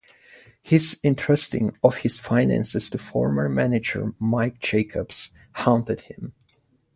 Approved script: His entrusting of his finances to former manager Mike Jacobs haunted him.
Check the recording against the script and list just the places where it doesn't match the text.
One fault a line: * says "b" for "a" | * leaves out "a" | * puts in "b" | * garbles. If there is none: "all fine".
all fine